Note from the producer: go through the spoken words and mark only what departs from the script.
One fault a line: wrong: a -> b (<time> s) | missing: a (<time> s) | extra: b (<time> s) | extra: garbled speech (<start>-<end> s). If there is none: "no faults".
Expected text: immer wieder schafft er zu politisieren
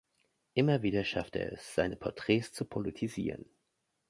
extra: es seine porträts (1.5 s)